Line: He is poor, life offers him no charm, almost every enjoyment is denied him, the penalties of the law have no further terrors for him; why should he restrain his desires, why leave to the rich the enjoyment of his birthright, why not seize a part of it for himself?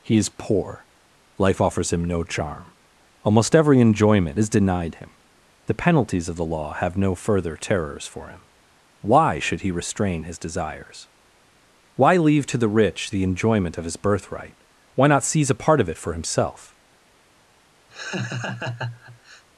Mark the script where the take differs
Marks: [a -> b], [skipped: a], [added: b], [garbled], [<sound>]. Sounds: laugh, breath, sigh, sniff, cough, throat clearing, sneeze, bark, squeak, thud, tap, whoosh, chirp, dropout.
He is poor, life offers him no charm, almost every enjoyment is denied him, the penalties of the law have no further terrors for him; why should he restrain his desires, why leave to the rich the enjoyment of his birthright, why not seize a part of it for himself? [laugh]